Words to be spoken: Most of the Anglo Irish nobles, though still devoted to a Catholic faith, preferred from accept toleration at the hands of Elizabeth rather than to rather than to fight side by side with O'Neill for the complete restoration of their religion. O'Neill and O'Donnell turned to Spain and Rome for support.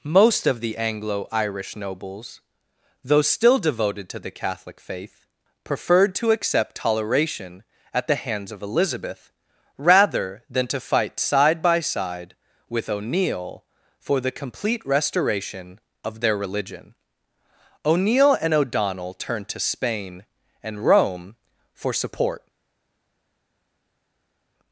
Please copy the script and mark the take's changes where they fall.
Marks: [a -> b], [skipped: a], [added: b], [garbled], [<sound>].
Most of the Anglo Irish nobles, though still devoted to [a -> the] Catholic faith, preferred [from -> to] accept toleration at the hands of Elizabeth rather than to [skipped: rather than to] fight side by side with O'Neill for the complete restoration of their religion. O'Neill and O'Donnell turned to Spain and Rome for support.